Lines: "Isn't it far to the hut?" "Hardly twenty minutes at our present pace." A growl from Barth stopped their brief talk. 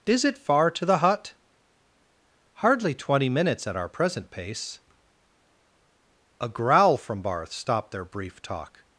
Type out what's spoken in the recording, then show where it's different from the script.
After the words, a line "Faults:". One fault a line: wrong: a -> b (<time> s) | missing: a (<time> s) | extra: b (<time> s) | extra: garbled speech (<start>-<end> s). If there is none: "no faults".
"Is it far to the hut?" "Hardly twenty minutes at our present pace." A growl from Barth stopped their brief talk.
Faults:
wrong: Isn't -> Is (0.1 s)